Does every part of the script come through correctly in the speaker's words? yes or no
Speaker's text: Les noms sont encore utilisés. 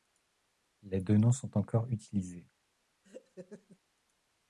no